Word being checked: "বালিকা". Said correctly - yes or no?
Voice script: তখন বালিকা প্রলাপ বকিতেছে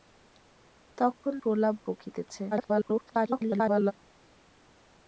no